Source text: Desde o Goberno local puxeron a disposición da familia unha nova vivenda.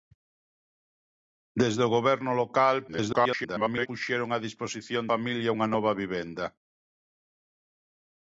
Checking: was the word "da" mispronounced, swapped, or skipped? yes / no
yes